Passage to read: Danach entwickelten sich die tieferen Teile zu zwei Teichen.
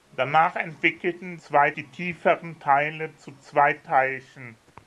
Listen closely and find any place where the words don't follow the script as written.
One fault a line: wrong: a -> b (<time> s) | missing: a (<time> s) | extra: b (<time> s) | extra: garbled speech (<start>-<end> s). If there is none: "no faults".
wrong: sich -> zwei (1.4 s)